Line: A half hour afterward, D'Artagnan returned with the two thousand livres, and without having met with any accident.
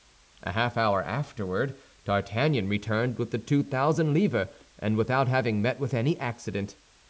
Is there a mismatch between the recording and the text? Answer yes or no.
no